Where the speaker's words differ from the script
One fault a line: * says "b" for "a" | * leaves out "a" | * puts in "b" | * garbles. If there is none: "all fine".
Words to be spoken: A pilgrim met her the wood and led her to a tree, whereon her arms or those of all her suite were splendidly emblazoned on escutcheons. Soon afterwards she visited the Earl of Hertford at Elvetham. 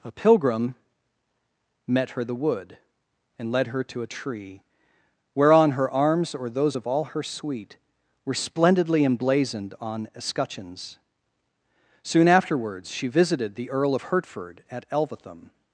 all fine